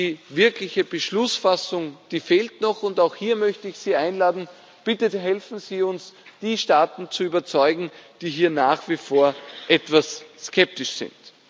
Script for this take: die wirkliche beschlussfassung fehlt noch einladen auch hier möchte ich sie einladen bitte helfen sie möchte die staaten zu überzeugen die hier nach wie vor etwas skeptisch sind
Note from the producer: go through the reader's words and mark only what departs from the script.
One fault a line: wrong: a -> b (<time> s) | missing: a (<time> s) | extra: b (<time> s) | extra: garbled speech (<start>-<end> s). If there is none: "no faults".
wrong: einladen -> und (2.8 s)
wrong: möchte -> uns (5.8 s)